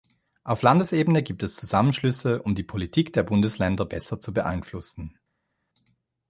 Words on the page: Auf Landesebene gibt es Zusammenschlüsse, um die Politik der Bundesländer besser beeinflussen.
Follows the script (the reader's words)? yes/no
no